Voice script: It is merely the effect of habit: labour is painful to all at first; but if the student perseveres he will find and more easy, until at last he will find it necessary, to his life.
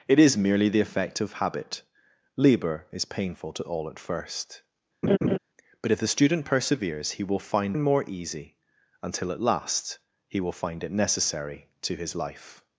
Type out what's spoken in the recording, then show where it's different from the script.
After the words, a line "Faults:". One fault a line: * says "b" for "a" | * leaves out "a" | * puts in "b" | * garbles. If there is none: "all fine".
It is merely the effect of habit: labour is painful to all at first; but if the student perseveres he will find and more easy, until at last he will find it necessary, to his life.
Faults:
all fine